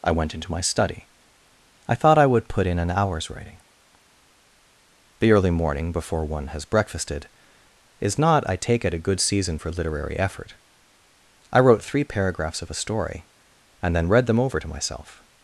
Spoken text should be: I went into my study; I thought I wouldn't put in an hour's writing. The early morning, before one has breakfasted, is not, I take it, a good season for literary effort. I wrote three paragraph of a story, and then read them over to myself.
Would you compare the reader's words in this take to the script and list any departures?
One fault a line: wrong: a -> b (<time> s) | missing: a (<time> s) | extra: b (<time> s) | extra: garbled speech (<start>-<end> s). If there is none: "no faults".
wrong: wouldn't -> would (2.2 s)
wrong: paragraph -> paragraphs (12.1 s)